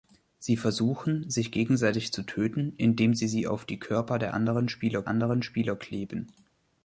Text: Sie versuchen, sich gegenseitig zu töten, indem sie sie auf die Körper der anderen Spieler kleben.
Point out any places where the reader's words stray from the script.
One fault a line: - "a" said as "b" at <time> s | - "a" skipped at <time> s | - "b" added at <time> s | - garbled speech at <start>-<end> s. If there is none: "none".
- "anderen Spieler" added at 5.1 s